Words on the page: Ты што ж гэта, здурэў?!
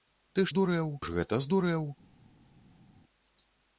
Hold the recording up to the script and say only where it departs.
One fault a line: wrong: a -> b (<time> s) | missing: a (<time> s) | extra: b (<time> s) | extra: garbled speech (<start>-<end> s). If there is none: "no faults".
wrong: што -> здурэў (0.5 s)